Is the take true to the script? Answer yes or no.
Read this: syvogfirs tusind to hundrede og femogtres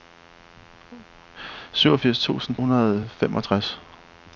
no